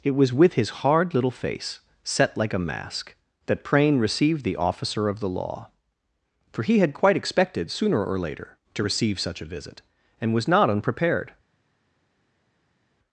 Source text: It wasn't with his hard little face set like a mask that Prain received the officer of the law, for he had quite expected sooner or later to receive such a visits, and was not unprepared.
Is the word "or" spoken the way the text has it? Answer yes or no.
yes